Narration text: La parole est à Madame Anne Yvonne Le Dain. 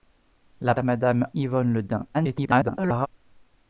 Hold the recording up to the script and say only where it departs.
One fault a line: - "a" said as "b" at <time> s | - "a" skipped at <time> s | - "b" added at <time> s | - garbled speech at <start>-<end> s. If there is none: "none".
- "parole est" skipped at 0.7 s
- "Anne" skipped at 1.3 s
- garbled speech at 2.1-3.1 s